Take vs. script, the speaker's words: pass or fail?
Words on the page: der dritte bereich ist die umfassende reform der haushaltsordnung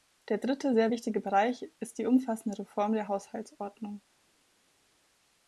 fail